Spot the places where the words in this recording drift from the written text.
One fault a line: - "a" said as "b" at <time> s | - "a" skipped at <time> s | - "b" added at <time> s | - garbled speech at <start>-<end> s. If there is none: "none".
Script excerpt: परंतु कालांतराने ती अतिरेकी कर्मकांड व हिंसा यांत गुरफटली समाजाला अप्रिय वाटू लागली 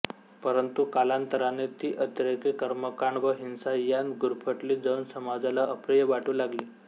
- "जाऊन" added at 4.8 s